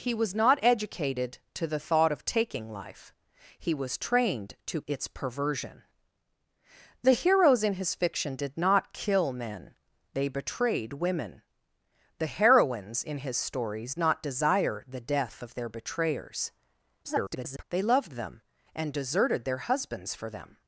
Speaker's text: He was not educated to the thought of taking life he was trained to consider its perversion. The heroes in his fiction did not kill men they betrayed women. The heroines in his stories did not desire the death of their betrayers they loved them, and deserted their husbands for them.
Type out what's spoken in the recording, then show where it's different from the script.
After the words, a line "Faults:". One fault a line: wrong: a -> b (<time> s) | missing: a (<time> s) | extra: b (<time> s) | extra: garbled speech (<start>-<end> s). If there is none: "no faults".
He was not educated to the thought of taking life he was trained to its perversion. The heroes in his fiction did not kill men they betrayed women. The heroines in his stories not desire the death of their betrayers [garbled] they loved them, and deserted their husbands for them.
Faults:
missing: consider (4.8 s)
missing: did (13.9 s)
extra: garbled speech (17.0-17.6 s)